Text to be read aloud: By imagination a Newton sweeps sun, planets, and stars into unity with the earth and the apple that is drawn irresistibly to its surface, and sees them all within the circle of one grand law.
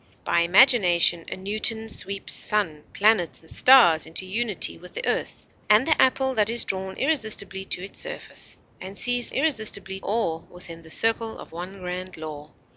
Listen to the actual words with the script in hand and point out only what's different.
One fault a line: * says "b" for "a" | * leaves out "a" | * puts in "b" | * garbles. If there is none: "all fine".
* says "irresistibly" for "them"